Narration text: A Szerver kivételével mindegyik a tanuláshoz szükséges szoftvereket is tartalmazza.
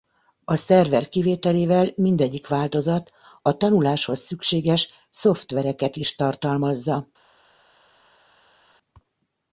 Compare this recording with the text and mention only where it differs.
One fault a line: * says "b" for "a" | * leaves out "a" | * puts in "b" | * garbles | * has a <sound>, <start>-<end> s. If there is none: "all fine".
* puts in "változat"